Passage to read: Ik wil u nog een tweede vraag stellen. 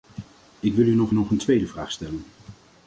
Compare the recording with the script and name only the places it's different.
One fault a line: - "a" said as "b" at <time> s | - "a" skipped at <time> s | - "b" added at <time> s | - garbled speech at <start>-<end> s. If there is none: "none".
- "nog" added at 1.1 s